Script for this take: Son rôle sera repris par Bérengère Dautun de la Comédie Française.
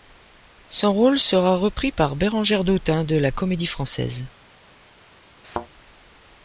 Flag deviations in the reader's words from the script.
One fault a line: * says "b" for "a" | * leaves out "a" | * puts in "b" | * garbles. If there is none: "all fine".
all fine